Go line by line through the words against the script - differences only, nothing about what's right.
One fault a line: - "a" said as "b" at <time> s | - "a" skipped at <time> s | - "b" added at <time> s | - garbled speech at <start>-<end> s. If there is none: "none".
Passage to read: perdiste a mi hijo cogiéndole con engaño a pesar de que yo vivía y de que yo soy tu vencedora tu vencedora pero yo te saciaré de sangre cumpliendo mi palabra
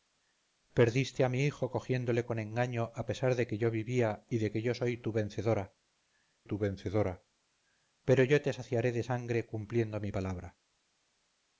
none